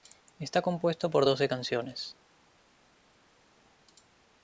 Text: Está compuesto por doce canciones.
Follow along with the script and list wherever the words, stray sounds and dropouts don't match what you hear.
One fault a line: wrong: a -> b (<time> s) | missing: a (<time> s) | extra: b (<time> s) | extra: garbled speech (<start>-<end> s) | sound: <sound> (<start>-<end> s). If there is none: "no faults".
no faults